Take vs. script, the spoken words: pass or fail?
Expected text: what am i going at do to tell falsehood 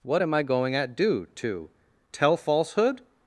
pass